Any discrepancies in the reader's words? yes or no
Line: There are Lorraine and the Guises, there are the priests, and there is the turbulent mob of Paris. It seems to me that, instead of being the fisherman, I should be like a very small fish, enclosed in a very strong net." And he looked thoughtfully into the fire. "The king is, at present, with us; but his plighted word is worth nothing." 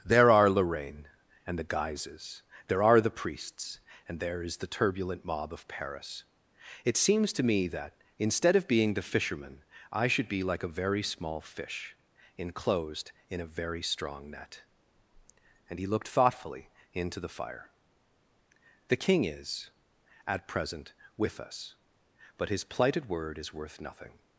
no